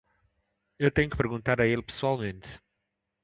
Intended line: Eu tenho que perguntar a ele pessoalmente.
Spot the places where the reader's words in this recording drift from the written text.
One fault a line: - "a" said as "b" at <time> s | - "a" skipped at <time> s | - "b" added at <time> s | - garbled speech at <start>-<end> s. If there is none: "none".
none